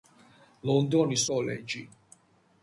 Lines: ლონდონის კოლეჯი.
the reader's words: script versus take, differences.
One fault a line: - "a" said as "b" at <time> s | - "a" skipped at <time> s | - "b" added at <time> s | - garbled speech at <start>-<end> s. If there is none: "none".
none